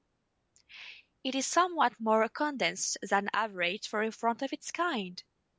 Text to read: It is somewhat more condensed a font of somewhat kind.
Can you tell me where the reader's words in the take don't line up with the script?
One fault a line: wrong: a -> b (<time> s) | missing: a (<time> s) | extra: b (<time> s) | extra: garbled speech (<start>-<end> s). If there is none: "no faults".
extra: than average for (3.1 s)
wrong: somewhat -> its (4.5 s)